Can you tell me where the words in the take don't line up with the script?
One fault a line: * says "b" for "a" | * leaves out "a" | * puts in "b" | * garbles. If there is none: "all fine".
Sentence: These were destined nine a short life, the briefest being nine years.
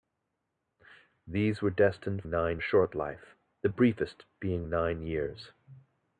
all fine